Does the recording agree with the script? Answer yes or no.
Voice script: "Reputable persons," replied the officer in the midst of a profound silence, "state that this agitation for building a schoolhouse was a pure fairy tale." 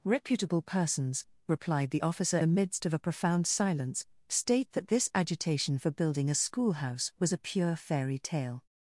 no